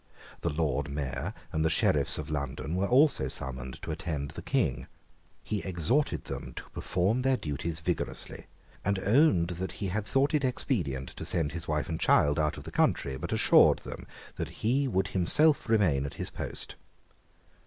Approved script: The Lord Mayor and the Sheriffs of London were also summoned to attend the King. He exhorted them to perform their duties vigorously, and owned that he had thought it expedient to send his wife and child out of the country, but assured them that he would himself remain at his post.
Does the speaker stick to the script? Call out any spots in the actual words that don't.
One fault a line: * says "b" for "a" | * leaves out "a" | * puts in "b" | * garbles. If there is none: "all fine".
all fine